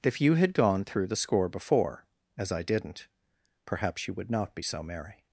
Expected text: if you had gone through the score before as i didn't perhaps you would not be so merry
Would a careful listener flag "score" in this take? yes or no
no